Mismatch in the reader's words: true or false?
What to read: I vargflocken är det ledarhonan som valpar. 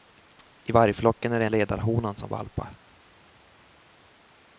false